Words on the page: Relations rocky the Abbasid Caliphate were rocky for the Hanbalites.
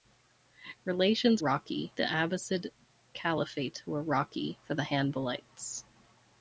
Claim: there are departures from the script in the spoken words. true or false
false